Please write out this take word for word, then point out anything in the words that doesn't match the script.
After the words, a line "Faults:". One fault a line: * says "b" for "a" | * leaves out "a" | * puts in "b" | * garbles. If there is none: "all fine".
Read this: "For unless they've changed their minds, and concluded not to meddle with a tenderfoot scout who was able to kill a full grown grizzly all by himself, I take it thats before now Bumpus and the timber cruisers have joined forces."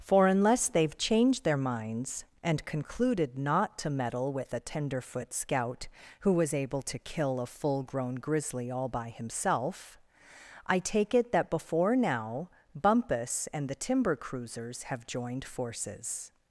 "For unless they've changed their minds, and concluded not to meddle with a tenderfoot scout who was able to kill a full grown grizzly all by himself, I take it that before now Bumpus and the timber cruisers have joined forces."
Faults:
* says "that" for "thats"